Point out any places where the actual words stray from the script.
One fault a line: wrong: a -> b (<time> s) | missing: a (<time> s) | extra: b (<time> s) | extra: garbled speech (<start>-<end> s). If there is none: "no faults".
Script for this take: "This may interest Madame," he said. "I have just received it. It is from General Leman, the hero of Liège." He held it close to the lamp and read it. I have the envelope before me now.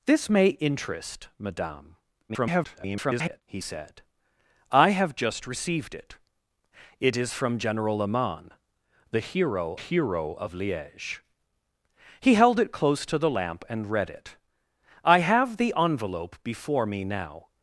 extra: garbled speech (2.3-3.4 s)
extra: hero (9.7 s)